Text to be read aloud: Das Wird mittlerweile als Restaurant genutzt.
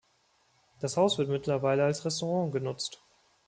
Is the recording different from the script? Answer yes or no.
yes